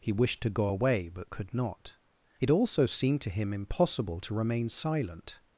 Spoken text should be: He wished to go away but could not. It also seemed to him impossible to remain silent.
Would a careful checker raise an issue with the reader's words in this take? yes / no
no